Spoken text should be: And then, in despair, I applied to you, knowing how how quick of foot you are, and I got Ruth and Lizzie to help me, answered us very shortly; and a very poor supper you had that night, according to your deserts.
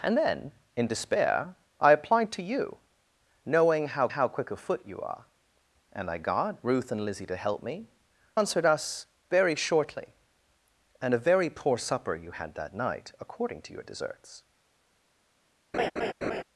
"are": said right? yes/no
yes